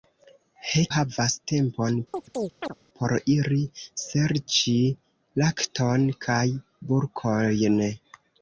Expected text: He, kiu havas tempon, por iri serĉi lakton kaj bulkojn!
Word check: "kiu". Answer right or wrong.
wrong